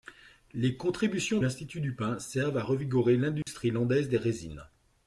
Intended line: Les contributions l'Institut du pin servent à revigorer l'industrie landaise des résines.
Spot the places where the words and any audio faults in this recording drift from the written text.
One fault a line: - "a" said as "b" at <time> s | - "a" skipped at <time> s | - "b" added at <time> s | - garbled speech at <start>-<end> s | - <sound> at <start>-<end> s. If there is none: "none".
- dropout at 3.4-3.5 s